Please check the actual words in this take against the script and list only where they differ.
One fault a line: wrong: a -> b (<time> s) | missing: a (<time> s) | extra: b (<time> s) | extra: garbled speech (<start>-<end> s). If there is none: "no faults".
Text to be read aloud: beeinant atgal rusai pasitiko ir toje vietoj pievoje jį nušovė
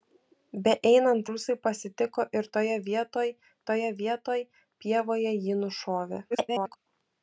missing: atgal (1.3 s)
extra: toje vietoj (3.7 s)
extra: garbled speech (6.3-6.8 s)